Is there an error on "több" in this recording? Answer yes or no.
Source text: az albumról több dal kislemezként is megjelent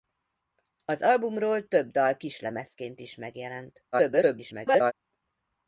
no